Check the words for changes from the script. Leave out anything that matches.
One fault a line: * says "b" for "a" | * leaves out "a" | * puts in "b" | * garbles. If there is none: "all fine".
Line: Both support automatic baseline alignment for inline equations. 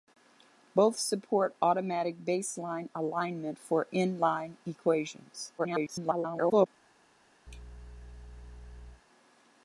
* garbles